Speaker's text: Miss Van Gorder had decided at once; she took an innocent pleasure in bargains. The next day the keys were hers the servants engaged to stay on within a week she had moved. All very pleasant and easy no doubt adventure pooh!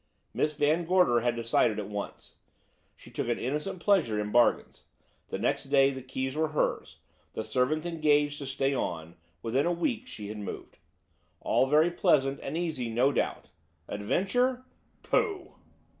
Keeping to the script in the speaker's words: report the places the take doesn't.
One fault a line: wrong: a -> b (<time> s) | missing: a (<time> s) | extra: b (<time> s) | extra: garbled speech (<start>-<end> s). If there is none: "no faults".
no faults